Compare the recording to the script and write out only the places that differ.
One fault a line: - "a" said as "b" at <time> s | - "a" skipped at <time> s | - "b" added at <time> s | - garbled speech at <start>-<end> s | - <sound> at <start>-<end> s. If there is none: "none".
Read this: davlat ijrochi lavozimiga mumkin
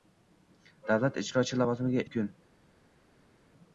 none